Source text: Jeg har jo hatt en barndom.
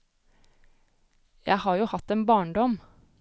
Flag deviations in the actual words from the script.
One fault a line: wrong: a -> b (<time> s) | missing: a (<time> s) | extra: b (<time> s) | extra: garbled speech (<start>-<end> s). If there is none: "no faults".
no faults